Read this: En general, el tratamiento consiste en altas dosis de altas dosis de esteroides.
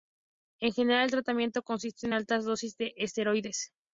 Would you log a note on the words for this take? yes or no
yes